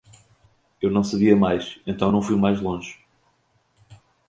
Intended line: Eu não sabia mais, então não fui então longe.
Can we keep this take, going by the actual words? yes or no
no